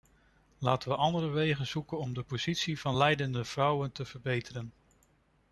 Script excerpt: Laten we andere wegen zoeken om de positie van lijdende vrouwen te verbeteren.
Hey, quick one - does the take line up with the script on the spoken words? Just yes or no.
yes